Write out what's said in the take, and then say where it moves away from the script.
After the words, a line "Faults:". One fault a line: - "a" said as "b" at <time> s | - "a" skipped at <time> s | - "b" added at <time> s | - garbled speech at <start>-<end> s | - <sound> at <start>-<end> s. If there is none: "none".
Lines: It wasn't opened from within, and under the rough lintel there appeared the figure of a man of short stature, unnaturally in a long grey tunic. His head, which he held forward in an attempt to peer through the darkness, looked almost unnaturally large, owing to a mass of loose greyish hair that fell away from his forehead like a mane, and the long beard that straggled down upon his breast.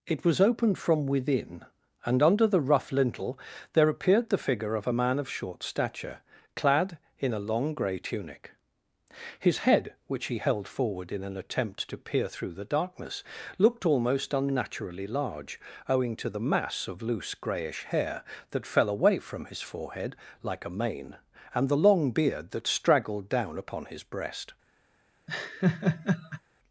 It was opened from within, and under the rough lintel there appeared the figure of a man of short stature, clad in a long grey tunic. His head, which he held forward in an attempt to peer through the darkness, looked almost unnaturally large, owing to the mass of loose greyish hair that fell away from his forehead like a mane, and the long beard that straggled down upon his breast.
Faults:
- "wasn't" said as "was" at 0.2 s
- "unnaturally" said as "clad" at 6.5 s
- "a" said as "the" at 16.3 s
- laugh at 25.3-26.4 s